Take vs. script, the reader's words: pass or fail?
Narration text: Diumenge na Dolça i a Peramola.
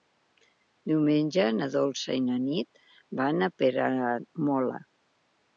fail